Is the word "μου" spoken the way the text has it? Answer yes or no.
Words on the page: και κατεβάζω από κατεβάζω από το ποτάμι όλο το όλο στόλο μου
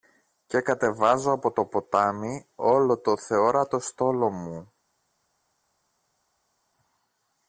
yes